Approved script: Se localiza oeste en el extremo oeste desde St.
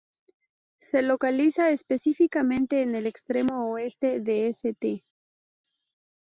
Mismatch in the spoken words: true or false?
true